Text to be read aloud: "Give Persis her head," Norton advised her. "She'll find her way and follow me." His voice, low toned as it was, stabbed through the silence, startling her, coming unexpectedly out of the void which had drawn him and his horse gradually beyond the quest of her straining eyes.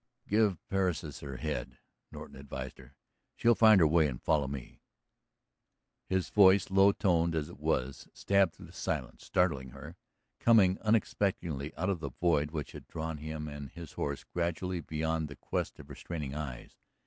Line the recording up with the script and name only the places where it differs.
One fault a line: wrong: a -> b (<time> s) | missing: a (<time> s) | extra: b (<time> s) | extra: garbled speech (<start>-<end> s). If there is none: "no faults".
no faults